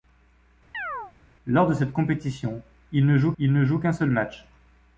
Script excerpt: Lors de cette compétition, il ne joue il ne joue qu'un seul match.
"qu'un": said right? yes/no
yes